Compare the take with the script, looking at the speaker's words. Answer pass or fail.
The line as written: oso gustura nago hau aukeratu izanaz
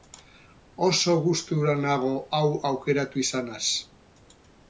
pass